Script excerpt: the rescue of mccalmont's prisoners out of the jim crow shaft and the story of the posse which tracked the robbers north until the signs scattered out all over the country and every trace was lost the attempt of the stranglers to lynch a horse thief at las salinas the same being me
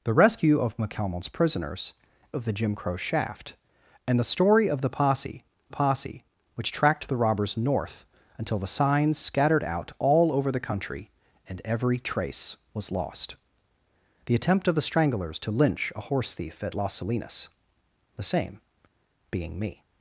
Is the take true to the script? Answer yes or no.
no